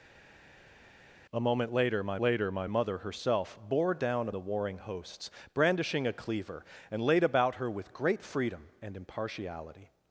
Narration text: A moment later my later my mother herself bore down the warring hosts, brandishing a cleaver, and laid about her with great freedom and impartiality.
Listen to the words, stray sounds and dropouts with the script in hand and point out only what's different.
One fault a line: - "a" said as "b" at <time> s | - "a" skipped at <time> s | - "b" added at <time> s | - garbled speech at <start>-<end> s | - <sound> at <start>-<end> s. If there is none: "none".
none